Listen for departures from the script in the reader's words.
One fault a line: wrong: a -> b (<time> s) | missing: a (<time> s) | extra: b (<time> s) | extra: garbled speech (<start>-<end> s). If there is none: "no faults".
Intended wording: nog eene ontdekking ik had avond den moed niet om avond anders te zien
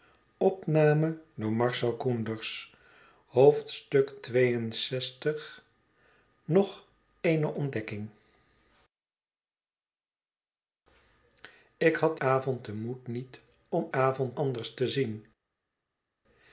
no faults